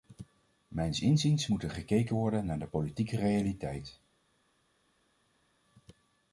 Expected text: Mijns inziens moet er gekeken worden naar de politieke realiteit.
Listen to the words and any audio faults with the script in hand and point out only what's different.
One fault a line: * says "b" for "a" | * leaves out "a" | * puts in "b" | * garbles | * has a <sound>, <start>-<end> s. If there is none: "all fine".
all fine